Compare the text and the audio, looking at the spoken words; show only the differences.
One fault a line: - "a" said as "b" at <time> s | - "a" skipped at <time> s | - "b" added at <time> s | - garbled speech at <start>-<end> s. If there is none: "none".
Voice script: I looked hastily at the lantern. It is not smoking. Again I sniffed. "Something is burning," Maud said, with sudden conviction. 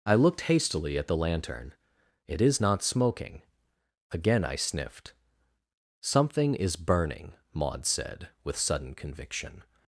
none